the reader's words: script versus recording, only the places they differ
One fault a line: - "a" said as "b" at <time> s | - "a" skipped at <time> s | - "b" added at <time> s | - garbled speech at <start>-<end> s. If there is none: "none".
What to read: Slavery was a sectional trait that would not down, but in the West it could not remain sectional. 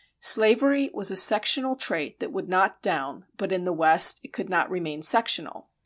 none